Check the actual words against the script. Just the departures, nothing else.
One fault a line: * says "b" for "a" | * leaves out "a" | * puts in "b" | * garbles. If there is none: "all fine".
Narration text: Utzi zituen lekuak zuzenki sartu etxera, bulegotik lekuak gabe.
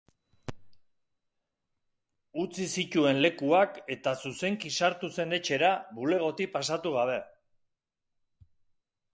* puts in "eta"
* puts in "zen"
* says "pasatu" for "lekuak"